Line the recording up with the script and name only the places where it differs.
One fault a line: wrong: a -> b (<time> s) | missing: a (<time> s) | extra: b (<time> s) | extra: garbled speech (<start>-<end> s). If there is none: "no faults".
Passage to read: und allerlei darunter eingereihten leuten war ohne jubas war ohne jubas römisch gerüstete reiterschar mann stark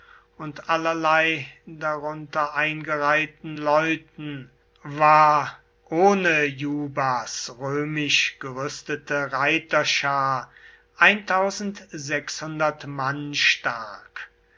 missing: war ohne jubas (7.5 s)